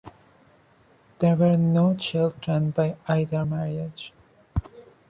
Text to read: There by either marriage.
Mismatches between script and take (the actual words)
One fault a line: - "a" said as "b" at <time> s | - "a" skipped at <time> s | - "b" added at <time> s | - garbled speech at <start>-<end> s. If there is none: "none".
- "were no children" added at 1.4 s